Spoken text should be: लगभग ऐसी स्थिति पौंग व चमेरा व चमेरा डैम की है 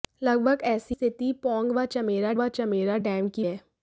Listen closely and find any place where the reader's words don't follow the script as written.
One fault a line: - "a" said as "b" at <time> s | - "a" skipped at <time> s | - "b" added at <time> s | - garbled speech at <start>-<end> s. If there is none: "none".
none